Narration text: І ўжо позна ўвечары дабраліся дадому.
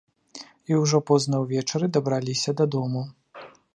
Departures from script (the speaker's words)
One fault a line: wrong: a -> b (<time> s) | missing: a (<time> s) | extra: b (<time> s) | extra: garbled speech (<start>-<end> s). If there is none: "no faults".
no faults